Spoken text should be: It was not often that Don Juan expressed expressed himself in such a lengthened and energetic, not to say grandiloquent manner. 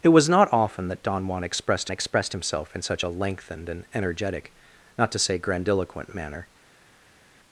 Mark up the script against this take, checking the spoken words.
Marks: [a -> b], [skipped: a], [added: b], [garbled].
It was not often that Don Juan expressed expressed himself in such a lengthened and energetic, not to say grandiloquent manner.